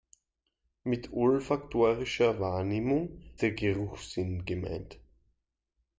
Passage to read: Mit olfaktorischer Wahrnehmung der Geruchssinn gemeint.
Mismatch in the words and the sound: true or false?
false